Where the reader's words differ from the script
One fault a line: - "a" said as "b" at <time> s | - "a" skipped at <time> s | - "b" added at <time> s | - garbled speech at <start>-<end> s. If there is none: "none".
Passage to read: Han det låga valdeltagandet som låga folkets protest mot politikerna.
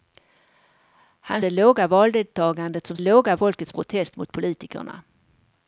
none